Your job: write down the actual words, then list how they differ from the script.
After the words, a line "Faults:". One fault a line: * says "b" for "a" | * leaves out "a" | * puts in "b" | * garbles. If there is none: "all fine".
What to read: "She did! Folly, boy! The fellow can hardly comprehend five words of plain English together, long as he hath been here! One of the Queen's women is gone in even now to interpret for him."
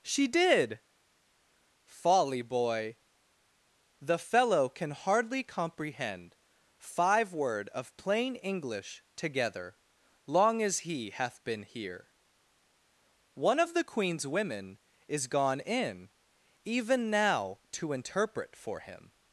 "She did! Folly, boy! The fellow can hardly comprehend five word of plain English together, long as he hath been here! One of the Queen's women is gone in even now to interpret for him."
Faults:
* says "word" for "words"